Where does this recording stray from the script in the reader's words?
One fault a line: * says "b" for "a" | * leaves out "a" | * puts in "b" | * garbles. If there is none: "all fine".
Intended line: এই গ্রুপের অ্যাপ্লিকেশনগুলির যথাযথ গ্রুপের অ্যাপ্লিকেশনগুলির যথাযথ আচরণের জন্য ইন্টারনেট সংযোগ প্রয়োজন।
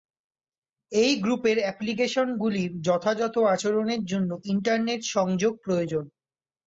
* leaves out "গ্রুপের অ্যাপ্লিকেশনগুলির যথাযথ"